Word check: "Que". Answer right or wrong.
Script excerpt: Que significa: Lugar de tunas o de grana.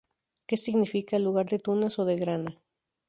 right